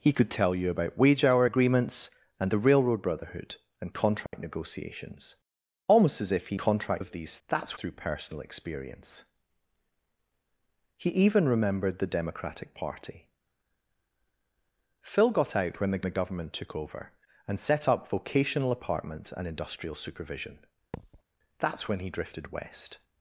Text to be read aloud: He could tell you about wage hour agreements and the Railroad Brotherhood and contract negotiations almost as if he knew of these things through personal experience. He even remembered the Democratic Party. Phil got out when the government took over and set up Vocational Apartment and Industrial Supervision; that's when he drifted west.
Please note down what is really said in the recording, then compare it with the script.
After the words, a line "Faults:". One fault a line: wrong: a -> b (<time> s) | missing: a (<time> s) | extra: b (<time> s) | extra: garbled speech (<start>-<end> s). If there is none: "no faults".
He could tell you about wage hour agreements and the Railroad Brotherhood and contract negotiations almost as if he contract of these that's through personal experience. He even remembered the Democratic Party. Phil got out when the the government took over and set up Vocational Apartment and Industrial Supervision; that's when he drifted west.
Faults:
wrong: knew -> contract (6.6 s)
wrong: things -> that's (7.5 s)
extra: the (16.0 s)